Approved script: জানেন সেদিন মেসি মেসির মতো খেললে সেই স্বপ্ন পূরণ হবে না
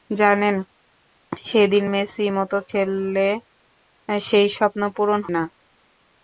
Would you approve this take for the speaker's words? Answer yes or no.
no